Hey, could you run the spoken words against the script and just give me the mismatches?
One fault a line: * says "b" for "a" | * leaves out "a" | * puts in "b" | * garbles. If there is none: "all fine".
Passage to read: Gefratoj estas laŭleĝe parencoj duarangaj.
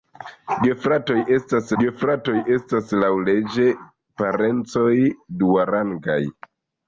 * puts in "gefratoj estas"